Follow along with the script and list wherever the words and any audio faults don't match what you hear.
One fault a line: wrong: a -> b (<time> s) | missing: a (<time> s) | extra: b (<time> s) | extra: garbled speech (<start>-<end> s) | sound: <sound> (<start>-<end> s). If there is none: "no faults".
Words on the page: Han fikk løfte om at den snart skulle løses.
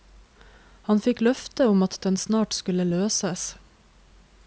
no faults